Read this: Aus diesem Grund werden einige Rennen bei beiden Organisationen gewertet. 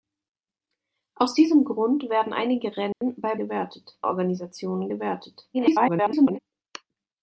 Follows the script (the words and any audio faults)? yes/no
no